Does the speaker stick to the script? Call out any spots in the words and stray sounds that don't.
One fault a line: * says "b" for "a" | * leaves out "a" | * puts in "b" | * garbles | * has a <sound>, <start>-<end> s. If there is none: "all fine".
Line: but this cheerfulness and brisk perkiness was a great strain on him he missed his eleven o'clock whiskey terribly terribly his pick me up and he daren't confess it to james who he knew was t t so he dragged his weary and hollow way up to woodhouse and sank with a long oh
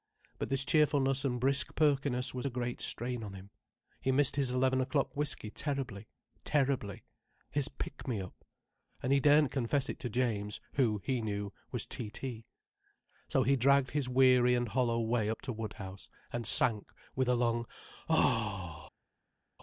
all fine